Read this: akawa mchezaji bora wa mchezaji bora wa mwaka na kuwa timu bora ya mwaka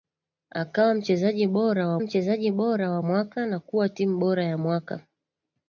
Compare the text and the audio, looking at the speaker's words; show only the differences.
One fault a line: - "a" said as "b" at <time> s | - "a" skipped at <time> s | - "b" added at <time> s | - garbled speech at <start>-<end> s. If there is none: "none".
none